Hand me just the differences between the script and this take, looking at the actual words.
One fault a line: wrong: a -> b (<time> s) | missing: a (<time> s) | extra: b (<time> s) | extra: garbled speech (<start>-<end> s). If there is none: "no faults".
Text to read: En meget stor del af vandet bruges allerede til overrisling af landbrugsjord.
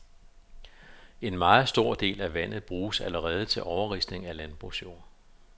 no faults